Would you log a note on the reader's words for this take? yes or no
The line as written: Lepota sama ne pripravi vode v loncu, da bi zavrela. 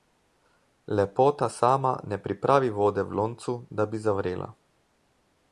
no